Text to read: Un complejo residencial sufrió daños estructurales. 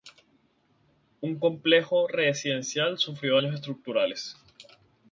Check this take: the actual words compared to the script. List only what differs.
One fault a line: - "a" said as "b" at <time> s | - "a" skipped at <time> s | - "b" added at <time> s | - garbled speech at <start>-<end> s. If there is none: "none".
none